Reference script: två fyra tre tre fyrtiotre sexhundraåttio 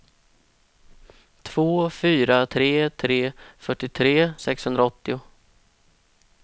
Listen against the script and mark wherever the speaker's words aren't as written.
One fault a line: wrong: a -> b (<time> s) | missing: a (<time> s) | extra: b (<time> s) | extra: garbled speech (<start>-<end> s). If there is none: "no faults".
no faults